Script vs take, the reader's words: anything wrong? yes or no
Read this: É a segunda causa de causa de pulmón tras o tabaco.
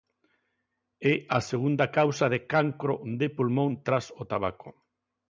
yes